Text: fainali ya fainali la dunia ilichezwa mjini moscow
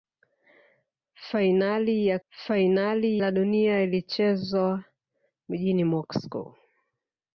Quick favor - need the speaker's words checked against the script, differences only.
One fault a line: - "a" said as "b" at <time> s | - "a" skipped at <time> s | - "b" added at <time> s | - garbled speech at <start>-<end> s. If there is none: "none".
none